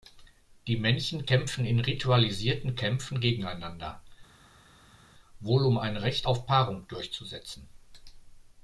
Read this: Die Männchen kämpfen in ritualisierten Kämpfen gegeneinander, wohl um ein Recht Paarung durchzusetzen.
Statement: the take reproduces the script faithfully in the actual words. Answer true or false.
false